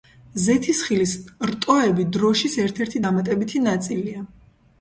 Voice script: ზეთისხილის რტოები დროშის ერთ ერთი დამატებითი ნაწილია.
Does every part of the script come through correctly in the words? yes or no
yes